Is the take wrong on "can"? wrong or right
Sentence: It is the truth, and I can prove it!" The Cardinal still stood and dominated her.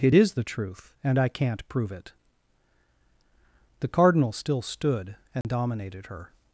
wrong